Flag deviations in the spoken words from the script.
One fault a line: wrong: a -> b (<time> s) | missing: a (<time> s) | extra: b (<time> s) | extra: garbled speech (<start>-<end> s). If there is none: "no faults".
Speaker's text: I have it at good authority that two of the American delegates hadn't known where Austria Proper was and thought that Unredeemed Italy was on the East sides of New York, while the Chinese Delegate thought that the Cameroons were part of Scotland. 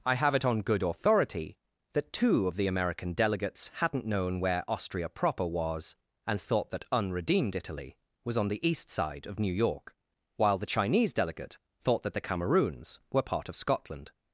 wrong: at -> on (0.5 s)
wrong: sides -> side (8.9 s)